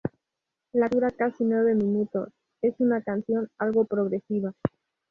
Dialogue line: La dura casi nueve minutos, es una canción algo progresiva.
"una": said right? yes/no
yes